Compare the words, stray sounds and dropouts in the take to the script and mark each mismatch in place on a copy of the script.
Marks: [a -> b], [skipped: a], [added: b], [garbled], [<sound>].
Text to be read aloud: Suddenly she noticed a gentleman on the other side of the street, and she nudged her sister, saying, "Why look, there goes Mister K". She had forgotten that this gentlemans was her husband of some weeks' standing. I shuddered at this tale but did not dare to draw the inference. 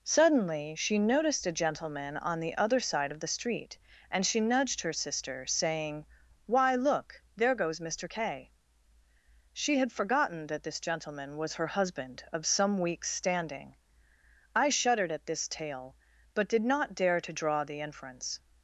Suddenly she noticed a gentleman on the other side of the street, and she nudged her sister, saying, "Why look, there goes Mister K". She had forgotten that this [gentlemans -> gentleman] was her husband of some weeks' standing. I shuddered at this tale but did not dare to draw the inference.